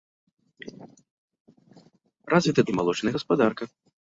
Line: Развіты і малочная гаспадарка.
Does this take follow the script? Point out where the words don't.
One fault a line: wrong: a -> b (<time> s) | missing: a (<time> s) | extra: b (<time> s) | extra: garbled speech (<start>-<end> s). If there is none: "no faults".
no faults